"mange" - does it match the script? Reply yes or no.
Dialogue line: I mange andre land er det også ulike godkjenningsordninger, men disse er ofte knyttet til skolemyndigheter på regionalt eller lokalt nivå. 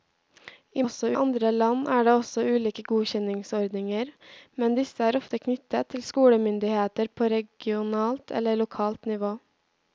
no